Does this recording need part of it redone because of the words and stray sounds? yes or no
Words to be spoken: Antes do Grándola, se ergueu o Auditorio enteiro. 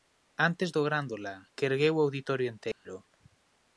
yes